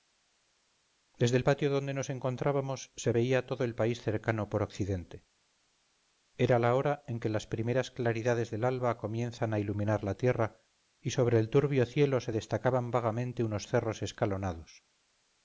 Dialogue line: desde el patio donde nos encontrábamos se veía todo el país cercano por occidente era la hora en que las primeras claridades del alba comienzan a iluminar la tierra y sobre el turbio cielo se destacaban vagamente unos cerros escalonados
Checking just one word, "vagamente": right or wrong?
right